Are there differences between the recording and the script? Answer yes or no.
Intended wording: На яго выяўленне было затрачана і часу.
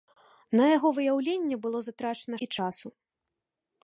no